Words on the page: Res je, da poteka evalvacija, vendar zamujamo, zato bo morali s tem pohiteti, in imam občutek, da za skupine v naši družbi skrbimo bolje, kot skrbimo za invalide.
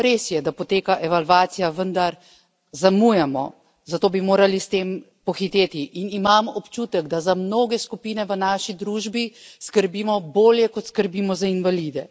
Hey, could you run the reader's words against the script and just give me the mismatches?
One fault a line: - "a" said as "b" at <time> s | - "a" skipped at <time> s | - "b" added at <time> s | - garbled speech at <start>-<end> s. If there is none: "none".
- "bo" said as "bi" at 4.1 s
- "mnoge" added at 7.3 s